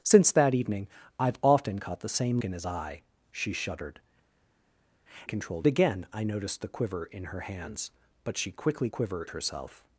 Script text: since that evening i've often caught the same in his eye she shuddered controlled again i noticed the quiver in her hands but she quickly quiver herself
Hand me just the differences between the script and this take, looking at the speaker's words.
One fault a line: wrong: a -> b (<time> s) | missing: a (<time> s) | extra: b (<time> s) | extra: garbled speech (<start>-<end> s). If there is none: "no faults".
no faults